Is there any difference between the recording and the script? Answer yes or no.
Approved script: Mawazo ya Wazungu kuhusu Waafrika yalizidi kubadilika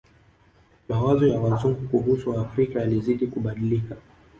no